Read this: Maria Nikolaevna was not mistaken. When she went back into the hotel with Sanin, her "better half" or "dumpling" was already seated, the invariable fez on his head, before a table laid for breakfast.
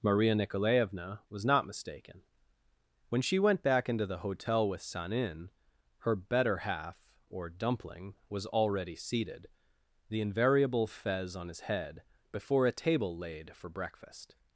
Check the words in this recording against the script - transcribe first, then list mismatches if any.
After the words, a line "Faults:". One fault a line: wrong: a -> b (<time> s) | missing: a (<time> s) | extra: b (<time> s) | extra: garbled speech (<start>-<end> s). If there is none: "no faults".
Maria Nikolaevna was not mistaken. When she went back into the hotel with Sanin, her "better half" or "dumpling" was already seated, the invariable fez on his head, before a table laid for breakfast.
Faults:
no faults